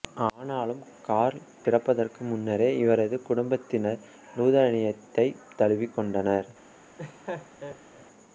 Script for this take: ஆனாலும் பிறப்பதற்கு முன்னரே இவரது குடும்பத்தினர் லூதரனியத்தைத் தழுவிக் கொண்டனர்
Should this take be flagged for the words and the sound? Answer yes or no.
yes